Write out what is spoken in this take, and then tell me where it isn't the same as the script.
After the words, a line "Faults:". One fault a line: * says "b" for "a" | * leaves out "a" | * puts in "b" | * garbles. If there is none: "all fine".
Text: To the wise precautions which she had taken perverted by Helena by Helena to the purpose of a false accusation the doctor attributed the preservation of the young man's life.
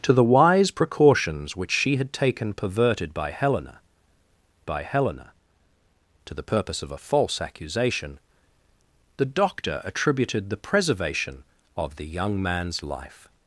To the wise precautions which she had taken perverted by Helena by Helena to the purpose of a false accusation the doctor attributed the preservation of the young man's life.
Faults:
all fine